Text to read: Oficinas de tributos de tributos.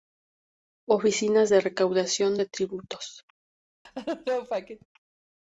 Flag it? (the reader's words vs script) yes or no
yes